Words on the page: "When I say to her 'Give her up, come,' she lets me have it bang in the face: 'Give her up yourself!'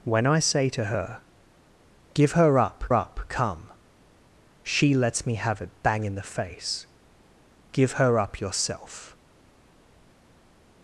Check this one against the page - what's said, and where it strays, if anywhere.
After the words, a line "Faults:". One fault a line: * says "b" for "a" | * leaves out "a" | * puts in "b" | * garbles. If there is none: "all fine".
"When I say to her 'Give her up up, come,' she lets me have it bang in the face: 'Give her up yourself!'
Faults:
* puts in "up"